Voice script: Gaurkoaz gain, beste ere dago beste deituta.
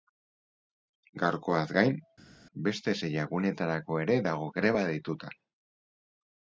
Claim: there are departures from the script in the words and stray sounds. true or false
true